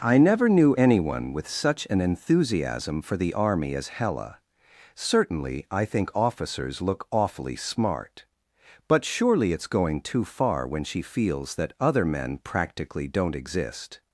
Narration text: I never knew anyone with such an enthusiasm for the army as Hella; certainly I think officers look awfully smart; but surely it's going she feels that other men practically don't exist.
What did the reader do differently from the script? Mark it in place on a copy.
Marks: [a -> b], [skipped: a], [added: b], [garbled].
I never knew anyone with such an enthusiasm for the army as Hella; certainly I think officers look awfully smart; but surely it's going [added: too far when] she feels that other men practically don't exist.